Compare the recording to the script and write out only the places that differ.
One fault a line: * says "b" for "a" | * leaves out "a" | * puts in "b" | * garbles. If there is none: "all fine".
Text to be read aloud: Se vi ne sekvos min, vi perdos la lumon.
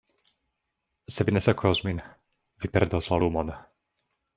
all fine